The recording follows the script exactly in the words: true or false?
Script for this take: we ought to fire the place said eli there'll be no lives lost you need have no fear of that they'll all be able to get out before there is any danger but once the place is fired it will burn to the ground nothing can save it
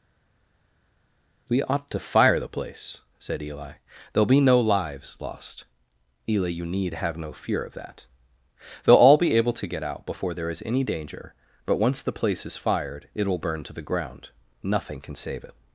false